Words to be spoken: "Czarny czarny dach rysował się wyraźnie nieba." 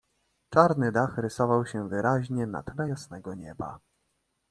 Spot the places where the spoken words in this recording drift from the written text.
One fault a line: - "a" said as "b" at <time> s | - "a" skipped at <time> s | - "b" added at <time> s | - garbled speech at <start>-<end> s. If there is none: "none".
- "czarny" skipped at 0.9 s
- "na tle jasnego" added at 2.5 s